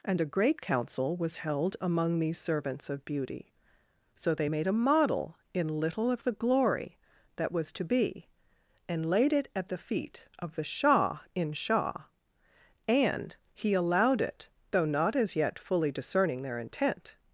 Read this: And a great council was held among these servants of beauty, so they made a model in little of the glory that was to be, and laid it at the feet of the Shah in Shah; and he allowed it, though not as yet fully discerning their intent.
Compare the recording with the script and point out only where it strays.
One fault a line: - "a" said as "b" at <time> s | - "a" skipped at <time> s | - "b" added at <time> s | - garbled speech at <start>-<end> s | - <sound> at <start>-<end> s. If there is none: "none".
none